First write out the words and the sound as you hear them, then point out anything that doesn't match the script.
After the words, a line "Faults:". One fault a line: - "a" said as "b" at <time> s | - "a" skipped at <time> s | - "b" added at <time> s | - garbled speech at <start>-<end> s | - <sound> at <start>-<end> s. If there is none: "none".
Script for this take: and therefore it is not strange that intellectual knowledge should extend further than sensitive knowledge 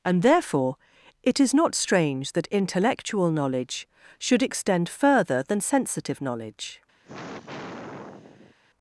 and therefore it is not strange that intellectual knowledge should extend further than sensitive knowledge
Faults:
- sigh at 7.0-8.5 s